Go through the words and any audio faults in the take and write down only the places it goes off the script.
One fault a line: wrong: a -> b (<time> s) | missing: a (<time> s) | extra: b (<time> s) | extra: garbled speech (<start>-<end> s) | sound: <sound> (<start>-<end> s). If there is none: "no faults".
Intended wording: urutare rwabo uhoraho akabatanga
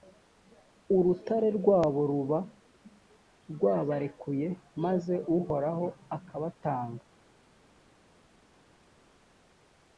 extra: ruba rwabarekuye maze (2.1 s)